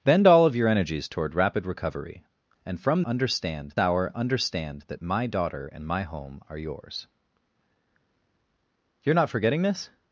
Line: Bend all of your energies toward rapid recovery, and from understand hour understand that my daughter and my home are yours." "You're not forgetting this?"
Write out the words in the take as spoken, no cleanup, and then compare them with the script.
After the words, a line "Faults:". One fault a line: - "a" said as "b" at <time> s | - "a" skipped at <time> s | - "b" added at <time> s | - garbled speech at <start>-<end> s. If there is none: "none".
Bend all of your energies toward rapid recovery, and from understand hour understand that my daughter and my home are yours." "You're not forgetting this?"
Faults:
none